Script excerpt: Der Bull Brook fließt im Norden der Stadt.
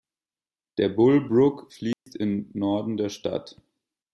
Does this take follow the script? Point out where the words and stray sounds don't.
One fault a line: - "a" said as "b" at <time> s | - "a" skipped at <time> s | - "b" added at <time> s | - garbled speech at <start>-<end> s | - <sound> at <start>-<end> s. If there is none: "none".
- dropout at 1.9-2.1 s